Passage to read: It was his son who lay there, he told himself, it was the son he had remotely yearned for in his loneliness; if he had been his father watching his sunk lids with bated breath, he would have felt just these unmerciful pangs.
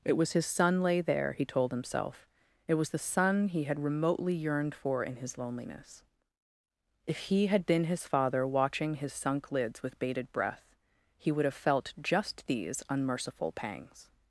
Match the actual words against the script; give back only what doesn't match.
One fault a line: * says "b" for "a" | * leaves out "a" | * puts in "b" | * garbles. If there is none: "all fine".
* leaves out "who"